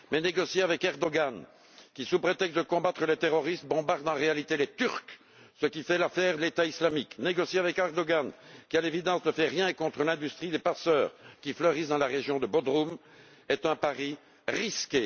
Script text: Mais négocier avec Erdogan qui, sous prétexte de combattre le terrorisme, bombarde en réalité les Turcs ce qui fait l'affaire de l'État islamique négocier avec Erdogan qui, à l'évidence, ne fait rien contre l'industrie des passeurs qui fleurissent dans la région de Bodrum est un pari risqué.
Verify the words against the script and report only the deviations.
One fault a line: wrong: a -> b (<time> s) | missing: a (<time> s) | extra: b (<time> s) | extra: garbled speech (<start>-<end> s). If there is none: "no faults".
missing: de (6.4 s)